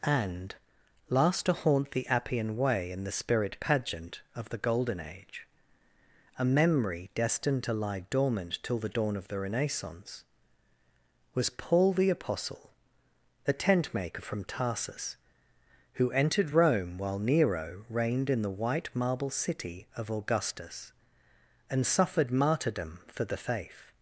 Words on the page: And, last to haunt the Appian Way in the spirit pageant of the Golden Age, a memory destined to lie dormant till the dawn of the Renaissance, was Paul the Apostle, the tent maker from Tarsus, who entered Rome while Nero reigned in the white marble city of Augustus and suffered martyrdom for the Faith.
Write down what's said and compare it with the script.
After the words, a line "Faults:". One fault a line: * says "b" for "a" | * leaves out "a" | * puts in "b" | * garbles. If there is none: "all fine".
And, last to haunt the Appian Way in the spirit pageant of the Golden Age, a memory destined to lie dormant till the dawn of the Renaissance, was Paul the Apostle, the tent maker from Tarsus, who entered Rome while Nero reigned in the white marble city of Augustus and suffered martyrdom for the Faith.
Faults:
all fine